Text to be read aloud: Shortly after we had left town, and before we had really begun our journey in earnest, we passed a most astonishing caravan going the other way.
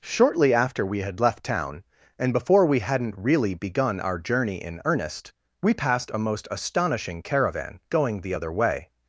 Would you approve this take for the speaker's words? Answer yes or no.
no